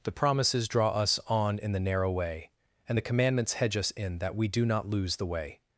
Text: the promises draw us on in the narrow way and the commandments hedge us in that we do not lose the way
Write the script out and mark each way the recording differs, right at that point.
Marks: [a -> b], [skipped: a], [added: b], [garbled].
the promises draw us on in the narrow way and the commandments hedge us in that we do not lose the way